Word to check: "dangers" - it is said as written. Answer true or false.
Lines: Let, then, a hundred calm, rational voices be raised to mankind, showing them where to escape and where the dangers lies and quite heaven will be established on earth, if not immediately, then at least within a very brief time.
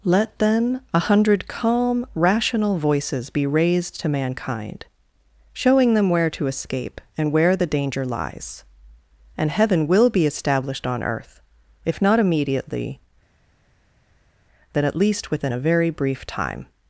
false